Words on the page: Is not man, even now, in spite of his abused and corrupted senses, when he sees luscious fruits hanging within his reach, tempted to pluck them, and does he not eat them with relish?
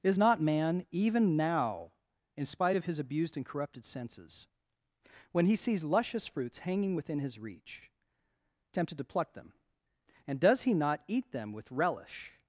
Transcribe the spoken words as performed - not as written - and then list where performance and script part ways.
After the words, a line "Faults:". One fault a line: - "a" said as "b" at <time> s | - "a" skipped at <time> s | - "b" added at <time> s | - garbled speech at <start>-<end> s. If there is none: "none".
Is not man, even now, in spite of his abused and corrupted senses, when he sees luscious fruits hanging within his reach, tempted to pluck them, and does he not eat them with relish?
Faults:
none